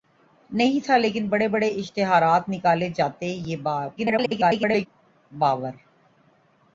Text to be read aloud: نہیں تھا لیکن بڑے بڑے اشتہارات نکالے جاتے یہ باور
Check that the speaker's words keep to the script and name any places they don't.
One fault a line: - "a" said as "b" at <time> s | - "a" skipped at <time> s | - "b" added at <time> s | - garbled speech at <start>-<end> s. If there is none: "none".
- garbled speech at 4.0-4.9 s